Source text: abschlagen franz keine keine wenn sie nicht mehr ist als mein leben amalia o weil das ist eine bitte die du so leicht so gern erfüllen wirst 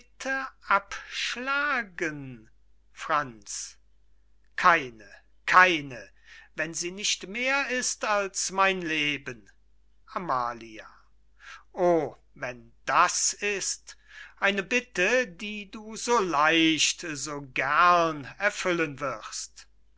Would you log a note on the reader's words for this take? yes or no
yes